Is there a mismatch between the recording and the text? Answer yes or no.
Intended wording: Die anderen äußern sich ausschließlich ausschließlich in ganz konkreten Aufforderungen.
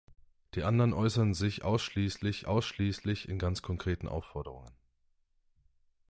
no